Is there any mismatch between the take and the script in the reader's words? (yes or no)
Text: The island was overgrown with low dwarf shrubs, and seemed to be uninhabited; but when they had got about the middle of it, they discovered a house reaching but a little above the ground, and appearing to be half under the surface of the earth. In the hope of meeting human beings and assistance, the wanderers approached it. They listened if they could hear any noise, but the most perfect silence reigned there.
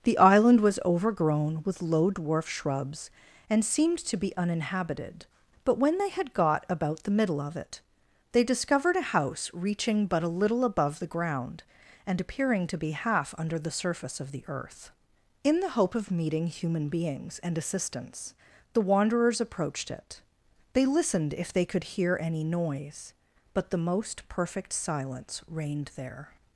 no